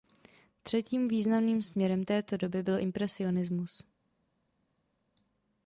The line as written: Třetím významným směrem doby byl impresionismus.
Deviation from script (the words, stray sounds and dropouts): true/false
true